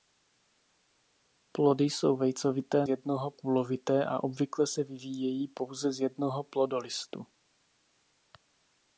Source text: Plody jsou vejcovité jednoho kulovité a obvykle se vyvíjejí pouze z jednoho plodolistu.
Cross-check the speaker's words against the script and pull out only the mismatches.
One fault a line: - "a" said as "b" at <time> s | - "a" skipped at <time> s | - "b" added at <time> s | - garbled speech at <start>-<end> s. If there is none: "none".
none